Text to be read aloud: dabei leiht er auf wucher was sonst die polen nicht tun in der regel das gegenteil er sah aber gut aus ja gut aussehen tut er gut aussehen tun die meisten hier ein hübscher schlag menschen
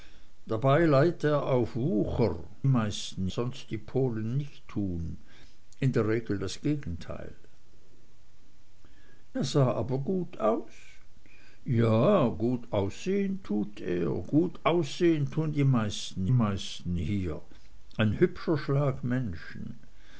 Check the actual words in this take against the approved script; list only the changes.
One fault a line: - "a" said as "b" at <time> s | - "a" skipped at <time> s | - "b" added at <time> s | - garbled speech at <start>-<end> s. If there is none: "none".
- "was" said as "meisten" at 2.7 s
- "meisten" added at 16.3 s